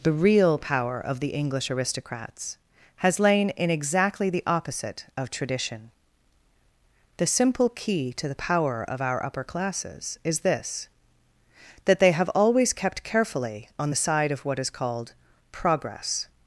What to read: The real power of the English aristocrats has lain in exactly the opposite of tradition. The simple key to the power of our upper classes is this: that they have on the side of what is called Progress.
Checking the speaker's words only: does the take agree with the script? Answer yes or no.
no